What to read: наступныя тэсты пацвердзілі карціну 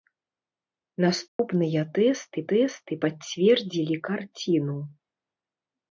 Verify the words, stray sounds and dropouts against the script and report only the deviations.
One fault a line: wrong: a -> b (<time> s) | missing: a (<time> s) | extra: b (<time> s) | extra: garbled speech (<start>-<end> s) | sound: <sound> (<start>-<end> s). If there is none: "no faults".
sound: dropout (1.3-1.4 s)
extra: тэсты (2.5 s)